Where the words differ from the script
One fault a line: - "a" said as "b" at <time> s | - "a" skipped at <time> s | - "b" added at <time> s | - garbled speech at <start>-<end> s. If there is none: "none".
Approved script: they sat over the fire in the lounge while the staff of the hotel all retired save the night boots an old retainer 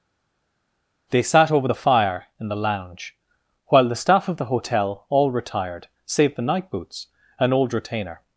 none